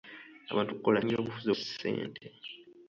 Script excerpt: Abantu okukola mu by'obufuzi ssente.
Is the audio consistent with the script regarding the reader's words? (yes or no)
yes